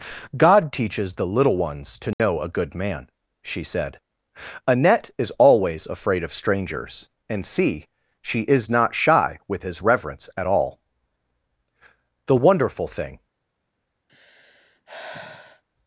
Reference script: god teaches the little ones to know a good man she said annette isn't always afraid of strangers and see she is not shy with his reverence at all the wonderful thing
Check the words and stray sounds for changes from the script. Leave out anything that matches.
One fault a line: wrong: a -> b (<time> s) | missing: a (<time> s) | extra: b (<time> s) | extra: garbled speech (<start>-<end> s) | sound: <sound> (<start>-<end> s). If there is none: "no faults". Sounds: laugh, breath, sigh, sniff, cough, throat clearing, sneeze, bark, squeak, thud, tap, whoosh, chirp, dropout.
sound: dropout (2.1-2.2 s)
wrong: isn't -> is (5.2 s)
sound: sigh (14.1-15.6 s)